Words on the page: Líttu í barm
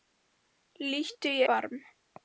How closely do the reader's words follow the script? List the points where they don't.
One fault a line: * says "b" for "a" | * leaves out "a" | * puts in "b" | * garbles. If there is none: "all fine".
all fine